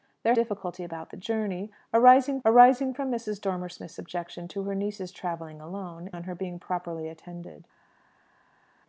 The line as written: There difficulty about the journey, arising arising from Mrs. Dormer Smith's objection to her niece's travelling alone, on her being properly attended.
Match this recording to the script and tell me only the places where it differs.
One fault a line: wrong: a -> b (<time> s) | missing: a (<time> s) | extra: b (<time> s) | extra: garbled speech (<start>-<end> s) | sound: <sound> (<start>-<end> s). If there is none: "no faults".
no faults